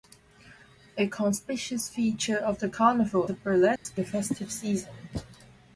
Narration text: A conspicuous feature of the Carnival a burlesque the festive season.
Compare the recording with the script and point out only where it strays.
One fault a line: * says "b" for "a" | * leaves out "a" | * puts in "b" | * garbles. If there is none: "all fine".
all fine